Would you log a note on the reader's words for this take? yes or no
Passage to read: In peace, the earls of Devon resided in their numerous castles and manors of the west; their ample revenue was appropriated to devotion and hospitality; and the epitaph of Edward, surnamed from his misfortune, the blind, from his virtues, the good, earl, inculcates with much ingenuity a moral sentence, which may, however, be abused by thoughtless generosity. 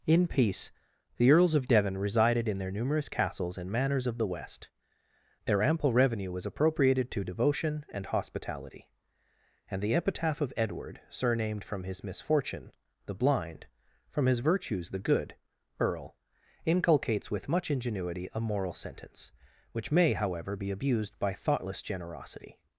no